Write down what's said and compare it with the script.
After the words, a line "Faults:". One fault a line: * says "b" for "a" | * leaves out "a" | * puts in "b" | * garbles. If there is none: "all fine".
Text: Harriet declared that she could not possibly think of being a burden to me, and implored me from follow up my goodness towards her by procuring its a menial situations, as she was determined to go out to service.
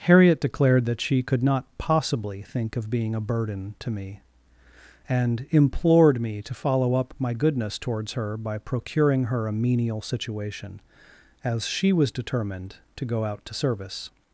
Harriet declared that she could not possibly think of being a burden to me, and implored me to follow up my goodness towards her by procuring her a menial situation, as she was determined to go out to service.
Faults:
* says "to" for "from"
* says "her" for "its"
* says "situation" for "situations"